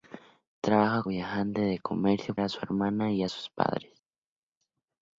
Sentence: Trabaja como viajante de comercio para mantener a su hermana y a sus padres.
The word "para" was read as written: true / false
false